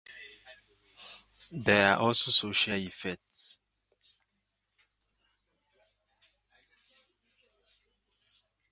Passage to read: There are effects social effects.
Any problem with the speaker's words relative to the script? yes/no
yes